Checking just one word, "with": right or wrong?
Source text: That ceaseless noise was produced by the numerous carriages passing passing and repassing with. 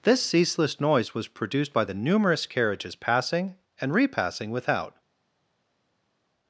wrong